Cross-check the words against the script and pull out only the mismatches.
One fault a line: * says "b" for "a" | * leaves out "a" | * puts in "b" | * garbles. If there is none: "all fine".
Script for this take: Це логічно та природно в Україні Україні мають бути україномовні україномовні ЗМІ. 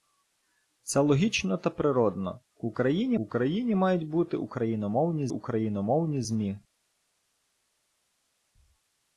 all fine